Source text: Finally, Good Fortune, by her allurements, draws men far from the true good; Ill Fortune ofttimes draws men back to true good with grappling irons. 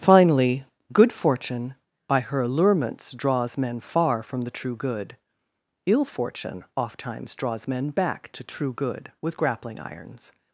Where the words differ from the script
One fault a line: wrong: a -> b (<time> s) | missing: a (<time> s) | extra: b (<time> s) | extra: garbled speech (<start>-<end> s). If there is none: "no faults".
no faults